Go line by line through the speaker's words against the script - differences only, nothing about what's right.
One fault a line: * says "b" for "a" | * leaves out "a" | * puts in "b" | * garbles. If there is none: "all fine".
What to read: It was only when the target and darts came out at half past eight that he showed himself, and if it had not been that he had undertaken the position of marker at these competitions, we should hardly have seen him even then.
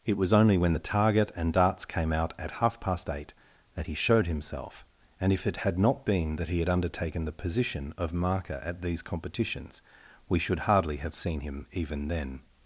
all fine